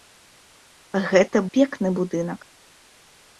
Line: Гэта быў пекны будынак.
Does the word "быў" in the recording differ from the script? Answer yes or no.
yes